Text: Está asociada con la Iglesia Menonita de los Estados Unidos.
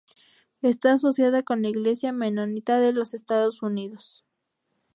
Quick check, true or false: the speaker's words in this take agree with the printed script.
true